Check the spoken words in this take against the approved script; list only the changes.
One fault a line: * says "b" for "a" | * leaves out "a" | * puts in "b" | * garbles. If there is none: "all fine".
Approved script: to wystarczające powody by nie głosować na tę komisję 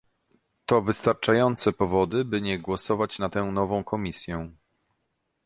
* puts in "nową"